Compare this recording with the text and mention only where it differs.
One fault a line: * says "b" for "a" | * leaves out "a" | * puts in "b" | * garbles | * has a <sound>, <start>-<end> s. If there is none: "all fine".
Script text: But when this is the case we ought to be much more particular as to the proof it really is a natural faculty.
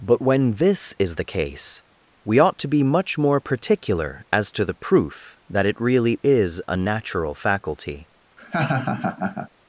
* puts in "that"
* has a laugh, 8.4-9.5 s